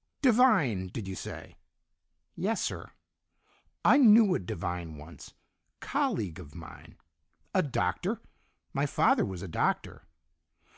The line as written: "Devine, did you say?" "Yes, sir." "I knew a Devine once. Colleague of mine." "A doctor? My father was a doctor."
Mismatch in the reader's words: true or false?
false